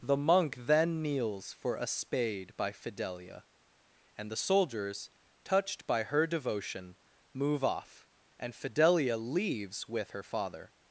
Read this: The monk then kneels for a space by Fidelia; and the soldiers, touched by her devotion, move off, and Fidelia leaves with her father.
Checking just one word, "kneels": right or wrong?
right